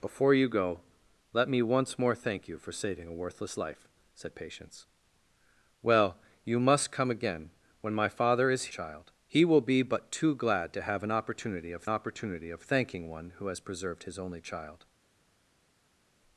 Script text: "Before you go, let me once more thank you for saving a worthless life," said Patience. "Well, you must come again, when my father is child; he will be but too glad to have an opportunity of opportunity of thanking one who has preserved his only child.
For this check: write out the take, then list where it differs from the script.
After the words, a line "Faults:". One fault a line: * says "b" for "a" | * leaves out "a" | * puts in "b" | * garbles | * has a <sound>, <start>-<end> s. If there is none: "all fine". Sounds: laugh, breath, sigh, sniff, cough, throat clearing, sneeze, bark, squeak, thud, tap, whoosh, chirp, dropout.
"Before you go, let me once more thank you for saving a worthless life," said Patience. "Well, you must come again, when my father is child; he will be but too glad to have an opportunity of opportunity of thanking one who has preserved his only child.
Faults:
all fine